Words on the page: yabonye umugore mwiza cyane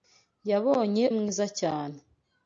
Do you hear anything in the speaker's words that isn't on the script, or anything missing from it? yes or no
yes